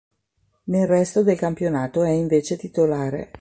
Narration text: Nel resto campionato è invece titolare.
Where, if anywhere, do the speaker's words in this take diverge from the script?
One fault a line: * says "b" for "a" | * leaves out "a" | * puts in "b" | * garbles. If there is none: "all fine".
* puts in "del"